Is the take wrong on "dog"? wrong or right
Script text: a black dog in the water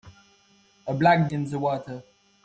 wrong